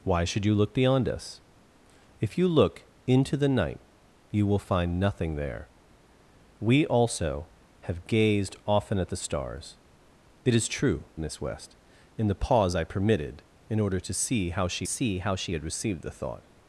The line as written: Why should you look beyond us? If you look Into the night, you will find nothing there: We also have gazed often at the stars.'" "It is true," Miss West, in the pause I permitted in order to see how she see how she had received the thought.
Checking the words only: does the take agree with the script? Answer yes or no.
yes